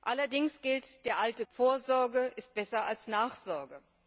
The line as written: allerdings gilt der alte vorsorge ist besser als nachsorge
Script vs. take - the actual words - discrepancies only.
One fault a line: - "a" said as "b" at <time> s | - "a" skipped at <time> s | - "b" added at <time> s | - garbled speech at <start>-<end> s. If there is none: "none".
none